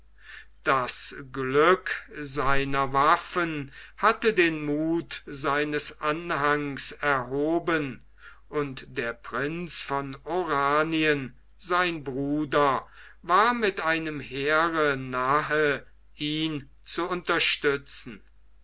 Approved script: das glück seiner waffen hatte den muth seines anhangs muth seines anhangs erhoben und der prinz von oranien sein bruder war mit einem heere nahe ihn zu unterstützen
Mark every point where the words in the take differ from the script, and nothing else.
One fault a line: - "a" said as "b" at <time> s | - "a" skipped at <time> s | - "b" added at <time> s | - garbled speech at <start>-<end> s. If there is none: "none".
- "muth seines anhangs" skipped at 6.9 s